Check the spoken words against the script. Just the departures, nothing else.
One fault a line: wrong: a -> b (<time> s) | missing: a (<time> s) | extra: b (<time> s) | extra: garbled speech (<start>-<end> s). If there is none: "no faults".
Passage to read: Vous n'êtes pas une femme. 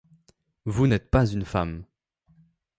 no faults